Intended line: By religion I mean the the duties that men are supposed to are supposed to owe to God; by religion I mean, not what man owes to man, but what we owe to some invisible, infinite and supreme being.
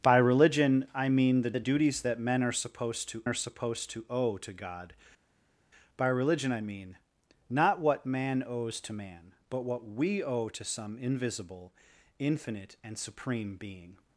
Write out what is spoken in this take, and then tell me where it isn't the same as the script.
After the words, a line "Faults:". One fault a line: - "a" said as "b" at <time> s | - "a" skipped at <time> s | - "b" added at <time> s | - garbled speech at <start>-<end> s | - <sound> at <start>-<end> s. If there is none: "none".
By religion I mean the the duties that men are supposed to are supposed to owe to God; by religion I mean, not what man owes to man, but what we owe to some invisible, infinite and supreme being.
Faults:
none